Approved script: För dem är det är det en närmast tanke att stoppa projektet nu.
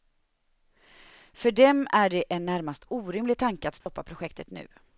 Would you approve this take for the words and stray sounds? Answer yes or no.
no